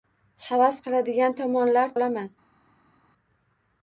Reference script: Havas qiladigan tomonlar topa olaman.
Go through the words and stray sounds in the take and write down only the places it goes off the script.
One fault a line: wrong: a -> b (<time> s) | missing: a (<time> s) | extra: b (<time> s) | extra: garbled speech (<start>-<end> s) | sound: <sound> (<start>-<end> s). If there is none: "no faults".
missing: topa (2.0 s)